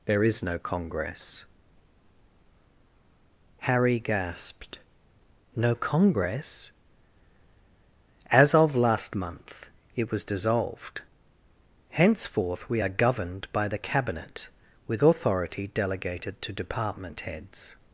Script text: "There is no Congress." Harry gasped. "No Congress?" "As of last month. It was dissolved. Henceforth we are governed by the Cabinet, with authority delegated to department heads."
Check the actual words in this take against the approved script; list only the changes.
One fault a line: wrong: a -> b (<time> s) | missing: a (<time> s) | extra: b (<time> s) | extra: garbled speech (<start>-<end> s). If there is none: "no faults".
no faults